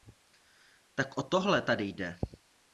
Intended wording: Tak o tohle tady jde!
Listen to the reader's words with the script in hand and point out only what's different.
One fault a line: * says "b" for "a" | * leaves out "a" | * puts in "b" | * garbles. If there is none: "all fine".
all fine